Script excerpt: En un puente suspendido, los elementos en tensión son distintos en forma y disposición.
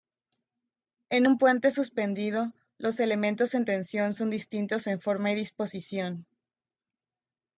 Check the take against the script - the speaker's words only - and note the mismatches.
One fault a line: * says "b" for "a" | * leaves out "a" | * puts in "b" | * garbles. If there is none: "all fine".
all fine